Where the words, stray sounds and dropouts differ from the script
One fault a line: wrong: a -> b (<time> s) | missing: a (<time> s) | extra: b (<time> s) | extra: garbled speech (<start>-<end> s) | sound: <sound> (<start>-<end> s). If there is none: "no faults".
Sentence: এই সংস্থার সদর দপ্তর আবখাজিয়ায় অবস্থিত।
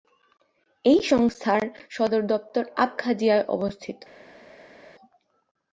no faults